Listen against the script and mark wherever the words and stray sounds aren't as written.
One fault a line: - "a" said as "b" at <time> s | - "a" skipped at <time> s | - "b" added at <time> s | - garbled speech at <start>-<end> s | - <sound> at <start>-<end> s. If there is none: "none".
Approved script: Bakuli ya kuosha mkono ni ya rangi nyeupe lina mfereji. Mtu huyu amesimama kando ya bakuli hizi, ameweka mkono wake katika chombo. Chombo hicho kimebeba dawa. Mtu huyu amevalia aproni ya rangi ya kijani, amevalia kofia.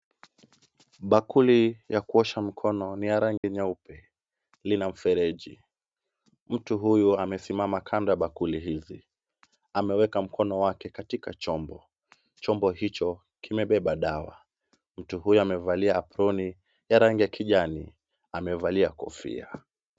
- dropout at 3.4-3.4 s